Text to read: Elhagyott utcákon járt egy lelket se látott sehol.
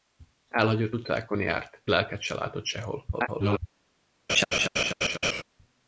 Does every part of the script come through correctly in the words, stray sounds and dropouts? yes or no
no